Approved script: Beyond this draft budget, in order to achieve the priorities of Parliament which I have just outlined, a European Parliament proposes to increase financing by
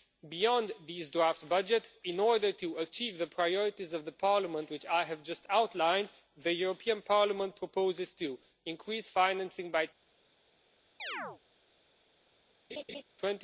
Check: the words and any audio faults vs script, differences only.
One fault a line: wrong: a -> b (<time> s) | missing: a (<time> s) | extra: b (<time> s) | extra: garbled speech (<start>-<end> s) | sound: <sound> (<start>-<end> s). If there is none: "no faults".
wrong: a -> the (6.3 s)
sound: chirp (11.0-11.4 s)
sound: laugh (12.7-13.0 s)